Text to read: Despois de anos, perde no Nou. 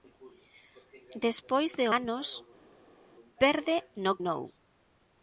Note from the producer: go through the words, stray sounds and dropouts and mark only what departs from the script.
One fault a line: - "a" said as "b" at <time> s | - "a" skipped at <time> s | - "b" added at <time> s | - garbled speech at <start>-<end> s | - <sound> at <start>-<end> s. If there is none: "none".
none